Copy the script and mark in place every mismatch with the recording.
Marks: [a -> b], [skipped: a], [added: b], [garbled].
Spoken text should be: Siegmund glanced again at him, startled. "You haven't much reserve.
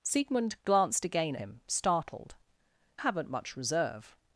Siegmund glanced again [skipped: at] him, startled. [skipped: "You] haven't much reserve.